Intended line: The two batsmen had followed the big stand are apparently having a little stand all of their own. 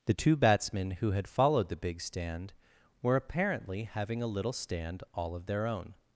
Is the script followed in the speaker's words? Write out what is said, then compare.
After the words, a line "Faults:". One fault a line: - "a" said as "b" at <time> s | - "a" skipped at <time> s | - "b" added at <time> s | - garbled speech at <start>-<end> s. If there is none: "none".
The two batsmen who had followed the big stand were apparently having a little stand all of their own.
Faults:
- "who" added at 0.9 s
- "are" said as "were" at 3.0 s